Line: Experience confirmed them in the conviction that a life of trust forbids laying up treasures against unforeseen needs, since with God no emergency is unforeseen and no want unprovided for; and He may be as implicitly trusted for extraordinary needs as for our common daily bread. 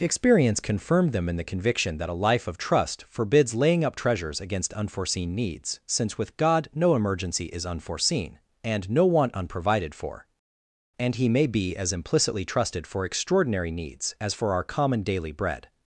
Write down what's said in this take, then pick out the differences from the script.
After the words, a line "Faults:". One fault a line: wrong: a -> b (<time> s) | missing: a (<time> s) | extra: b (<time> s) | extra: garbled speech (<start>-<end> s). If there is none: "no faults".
Experience confirmed them in the conviction that a life of trust forbids laying up treasures against unforeseen needs, since with God no emergency is unforeseen and no want unprovided for; and He may be as implicitly trusted for extraordinary needs as for our common daily bread.
Faults:
no faults